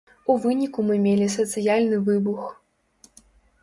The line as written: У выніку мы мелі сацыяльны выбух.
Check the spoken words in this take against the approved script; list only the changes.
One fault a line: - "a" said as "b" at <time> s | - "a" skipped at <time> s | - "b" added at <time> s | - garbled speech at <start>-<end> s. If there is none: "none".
none